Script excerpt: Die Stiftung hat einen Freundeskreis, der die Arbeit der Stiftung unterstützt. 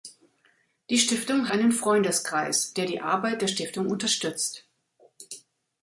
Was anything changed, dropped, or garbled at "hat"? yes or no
yes